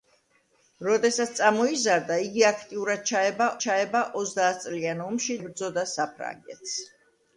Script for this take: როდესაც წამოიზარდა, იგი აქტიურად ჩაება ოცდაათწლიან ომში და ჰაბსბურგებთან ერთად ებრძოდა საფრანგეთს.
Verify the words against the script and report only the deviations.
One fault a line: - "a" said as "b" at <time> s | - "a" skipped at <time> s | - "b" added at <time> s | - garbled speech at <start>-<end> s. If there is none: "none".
- "ჩაება" added at 3.6 s
- "და ჰაბსბურგებთან ერთად" skipped at 5.4 s